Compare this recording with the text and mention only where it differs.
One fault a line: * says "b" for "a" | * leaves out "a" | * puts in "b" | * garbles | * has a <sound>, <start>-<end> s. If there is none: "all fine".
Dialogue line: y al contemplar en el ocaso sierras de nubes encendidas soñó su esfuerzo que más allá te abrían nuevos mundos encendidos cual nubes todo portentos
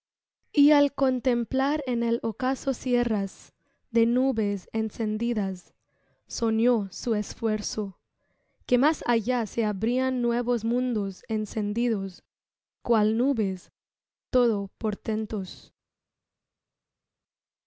* says "se" for "te"